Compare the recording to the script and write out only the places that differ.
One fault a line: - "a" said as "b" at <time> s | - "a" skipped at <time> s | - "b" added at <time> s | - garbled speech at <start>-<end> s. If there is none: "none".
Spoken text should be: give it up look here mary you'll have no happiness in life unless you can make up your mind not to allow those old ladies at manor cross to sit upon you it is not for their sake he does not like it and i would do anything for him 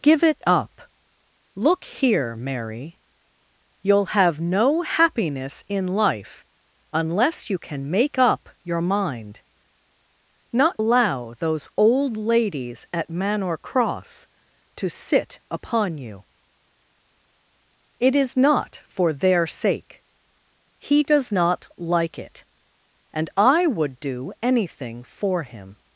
- "to" skipped at 10.8 s